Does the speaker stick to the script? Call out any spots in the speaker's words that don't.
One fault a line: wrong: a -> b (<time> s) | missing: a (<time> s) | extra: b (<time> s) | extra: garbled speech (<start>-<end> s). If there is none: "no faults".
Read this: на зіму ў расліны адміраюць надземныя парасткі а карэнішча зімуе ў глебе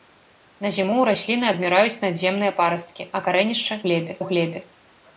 wrong: зімуе -> глебе (3.9 s)